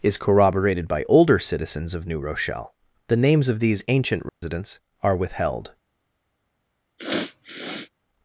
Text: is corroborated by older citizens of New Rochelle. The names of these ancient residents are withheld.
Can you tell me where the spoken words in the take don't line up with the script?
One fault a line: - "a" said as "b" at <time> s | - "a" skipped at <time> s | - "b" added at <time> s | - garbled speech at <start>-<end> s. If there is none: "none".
none